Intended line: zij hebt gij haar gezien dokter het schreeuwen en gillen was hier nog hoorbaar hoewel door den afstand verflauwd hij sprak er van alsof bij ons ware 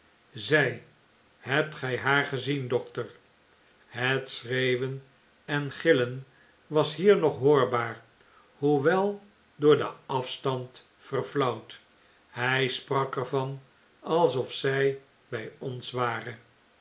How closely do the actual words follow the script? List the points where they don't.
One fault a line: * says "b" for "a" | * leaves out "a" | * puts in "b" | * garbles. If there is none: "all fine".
* puts in "zij"